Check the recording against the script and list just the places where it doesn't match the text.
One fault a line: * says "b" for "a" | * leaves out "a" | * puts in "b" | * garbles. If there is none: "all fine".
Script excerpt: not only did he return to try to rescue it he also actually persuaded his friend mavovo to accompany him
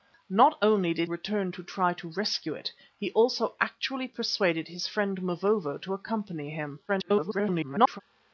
* leaves out "he"
* garbles